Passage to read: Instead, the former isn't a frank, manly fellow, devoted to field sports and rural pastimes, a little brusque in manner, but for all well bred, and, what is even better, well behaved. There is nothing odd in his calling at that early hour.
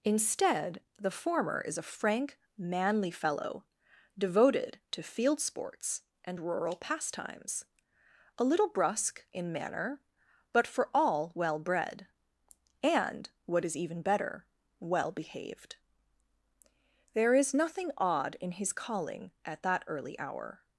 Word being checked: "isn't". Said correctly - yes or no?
no